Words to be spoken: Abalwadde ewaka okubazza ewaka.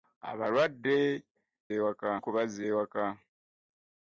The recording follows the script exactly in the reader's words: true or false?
true